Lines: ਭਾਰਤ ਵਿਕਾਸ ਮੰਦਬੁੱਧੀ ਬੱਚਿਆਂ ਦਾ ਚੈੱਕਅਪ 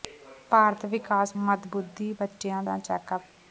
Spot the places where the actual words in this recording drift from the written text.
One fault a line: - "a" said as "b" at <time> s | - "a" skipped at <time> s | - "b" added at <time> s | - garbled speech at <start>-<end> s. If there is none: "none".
none